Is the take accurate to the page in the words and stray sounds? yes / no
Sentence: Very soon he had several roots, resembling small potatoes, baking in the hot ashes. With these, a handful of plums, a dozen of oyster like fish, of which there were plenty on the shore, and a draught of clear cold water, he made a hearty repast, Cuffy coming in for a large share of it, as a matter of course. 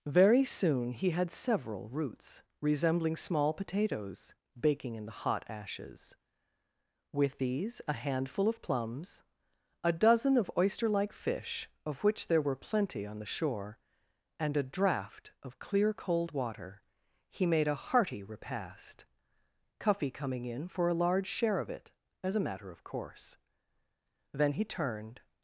no